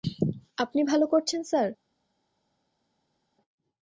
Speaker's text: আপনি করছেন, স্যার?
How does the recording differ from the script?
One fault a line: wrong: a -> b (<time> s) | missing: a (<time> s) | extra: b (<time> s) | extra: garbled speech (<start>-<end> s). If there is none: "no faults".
extra: ভালো (0.8 s)